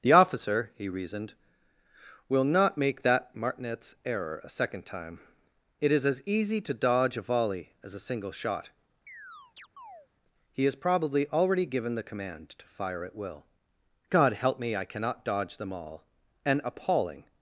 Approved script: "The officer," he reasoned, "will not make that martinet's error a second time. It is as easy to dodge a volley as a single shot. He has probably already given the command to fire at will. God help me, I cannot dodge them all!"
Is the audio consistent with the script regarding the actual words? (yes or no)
no